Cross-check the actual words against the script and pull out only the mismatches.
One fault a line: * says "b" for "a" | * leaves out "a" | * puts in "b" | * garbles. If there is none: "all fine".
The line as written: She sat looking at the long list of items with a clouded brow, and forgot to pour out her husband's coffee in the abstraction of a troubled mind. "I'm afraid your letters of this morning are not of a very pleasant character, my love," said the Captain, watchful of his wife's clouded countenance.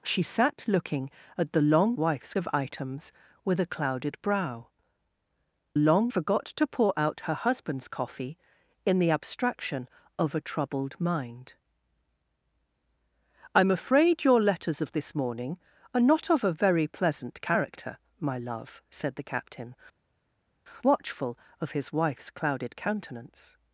* says "wife's" for "list"
* says "long" for "and"